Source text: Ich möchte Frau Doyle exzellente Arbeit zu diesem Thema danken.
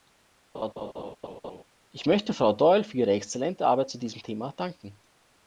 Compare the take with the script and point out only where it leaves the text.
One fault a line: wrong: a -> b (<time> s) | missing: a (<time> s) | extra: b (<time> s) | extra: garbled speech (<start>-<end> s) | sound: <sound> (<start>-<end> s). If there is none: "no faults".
sound: laugh (0.5-1.6 s)
extra: für ihre (2.8 s)